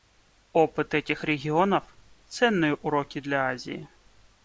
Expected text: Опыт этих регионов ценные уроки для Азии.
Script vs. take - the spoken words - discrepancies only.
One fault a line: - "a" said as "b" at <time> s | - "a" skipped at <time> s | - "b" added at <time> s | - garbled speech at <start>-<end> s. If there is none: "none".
none